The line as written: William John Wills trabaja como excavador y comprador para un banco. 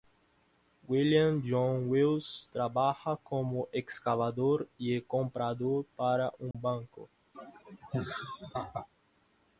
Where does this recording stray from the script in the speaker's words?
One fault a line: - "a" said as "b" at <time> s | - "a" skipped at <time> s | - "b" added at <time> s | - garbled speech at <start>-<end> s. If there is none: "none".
none